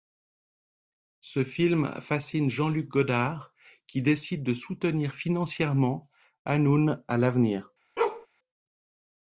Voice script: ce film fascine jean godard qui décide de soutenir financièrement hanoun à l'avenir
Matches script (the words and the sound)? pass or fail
fail